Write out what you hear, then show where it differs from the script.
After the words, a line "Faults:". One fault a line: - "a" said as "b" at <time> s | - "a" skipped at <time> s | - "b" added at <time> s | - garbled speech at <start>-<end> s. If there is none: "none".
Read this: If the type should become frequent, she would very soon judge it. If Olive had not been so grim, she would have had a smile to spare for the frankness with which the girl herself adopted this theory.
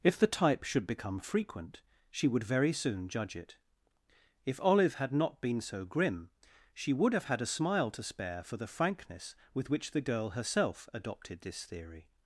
If the type should become frequent, she would very soon judge it. If Olive had not been so grim, she would have had a smile to spare for the frankness with which the girl herself adopted this theory.
Faults:
none